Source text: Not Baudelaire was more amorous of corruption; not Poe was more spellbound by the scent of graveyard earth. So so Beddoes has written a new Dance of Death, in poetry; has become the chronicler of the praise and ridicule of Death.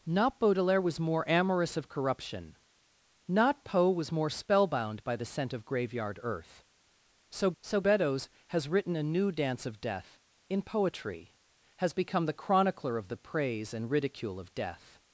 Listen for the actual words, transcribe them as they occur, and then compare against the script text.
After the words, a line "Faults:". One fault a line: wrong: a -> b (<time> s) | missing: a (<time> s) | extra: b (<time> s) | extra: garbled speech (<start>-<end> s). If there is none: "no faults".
Not Baudelaire was more amorous of corruption; not Poe was more spellbound by the scent of graveyard earth. So so Beddoes has written a new Dance of Death, in poetry; has become the chronicler of the praise and ridicule of Death.
Faults:
no faults